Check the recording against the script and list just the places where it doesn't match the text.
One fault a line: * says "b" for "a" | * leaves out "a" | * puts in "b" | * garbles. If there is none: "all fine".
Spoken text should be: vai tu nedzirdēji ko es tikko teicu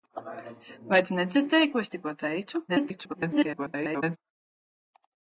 * garbles